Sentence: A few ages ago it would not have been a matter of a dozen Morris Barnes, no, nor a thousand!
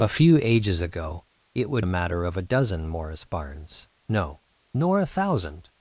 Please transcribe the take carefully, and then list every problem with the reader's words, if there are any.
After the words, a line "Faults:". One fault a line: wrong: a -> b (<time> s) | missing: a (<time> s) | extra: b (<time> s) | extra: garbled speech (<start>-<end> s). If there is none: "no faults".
A few ages ago it would a matter of a dozen Morris Barnes, no, nor a thousand!
Faults:
missing: not have been (1.9 s)